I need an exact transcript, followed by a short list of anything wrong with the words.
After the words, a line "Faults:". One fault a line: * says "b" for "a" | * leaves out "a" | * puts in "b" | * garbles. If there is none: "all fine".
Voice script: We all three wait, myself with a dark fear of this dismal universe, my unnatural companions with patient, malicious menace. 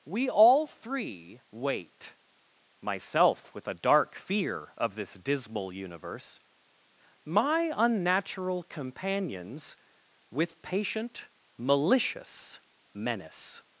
We all three wait, myself with a dark fear of this dismal universe, my unnatural companions with patient, malicious menace.
Faults:
all fine